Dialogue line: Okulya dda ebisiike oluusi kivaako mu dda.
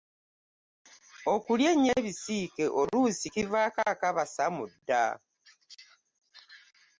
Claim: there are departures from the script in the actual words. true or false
true